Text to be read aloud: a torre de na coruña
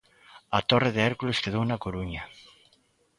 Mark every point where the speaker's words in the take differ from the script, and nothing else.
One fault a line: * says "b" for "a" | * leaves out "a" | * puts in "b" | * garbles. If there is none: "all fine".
* puts in "hércules quedou"